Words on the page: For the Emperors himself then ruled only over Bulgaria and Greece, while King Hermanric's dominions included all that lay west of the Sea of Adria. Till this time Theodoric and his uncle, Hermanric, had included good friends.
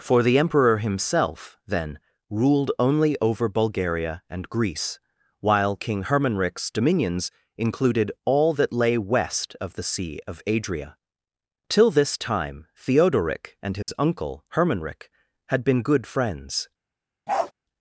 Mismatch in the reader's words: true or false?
true